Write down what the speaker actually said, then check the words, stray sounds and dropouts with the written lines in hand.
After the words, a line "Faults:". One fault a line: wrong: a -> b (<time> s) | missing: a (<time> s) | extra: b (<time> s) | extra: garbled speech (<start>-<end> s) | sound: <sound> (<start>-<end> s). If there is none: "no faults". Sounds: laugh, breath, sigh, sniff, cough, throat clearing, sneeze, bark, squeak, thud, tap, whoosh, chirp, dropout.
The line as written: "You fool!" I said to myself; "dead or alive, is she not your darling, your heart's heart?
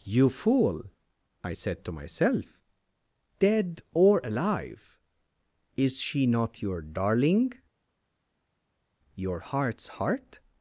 "You fool!" I said to myself; "dead or alive, is she not your darling, your heart's heart?
Faults:
no faults